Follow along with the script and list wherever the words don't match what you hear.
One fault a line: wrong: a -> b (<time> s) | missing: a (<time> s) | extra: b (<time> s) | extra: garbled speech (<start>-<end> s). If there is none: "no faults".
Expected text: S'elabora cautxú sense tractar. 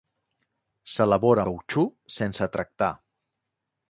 no faults